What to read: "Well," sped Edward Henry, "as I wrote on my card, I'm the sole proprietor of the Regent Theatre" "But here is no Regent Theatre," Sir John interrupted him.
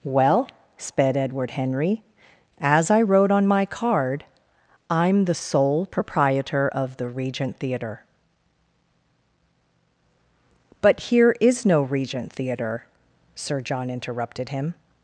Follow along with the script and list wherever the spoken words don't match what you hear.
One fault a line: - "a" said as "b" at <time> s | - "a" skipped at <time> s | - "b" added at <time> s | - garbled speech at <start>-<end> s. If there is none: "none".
none